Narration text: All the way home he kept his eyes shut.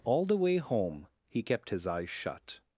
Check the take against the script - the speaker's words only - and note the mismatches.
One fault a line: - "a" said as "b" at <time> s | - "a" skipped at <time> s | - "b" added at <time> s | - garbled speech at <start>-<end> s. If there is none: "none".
none